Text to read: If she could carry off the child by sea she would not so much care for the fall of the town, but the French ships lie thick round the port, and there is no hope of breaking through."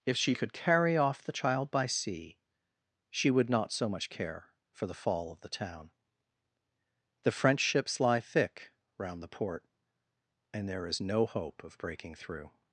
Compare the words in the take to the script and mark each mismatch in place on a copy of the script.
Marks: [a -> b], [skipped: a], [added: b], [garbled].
If she could carry off the child by sea she would not so much care for the fall of the town, [skipped: but] the French ships lie thick round the port, and there is no hope of breaking through."